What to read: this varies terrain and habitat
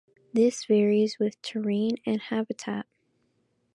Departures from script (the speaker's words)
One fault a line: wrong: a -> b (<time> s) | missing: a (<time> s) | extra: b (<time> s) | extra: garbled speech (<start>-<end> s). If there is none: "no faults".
extra: with (1.2 s)